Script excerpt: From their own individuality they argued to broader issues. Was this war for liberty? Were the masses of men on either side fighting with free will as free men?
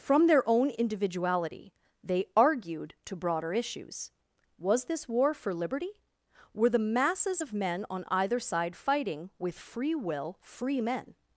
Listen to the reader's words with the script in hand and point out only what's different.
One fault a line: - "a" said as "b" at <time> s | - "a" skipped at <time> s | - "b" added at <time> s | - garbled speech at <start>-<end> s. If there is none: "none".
- "as" skipped at 10.4 s